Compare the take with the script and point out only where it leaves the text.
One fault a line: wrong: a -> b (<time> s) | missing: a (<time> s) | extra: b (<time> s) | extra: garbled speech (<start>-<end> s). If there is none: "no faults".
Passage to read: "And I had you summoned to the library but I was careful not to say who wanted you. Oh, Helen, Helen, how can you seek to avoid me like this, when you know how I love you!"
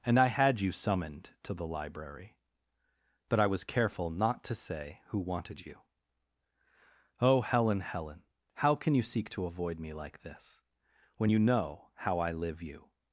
wrong: love -> live (12.3 s)